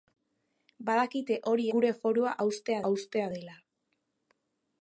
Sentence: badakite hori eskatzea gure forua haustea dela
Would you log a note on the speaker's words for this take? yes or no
yes